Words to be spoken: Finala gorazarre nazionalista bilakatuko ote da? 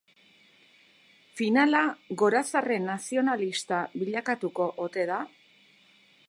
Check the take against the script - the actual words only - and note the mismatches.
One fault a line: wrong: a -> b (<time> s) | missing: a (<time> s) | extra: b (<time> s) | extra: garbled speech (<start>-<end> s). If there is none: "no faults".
no faults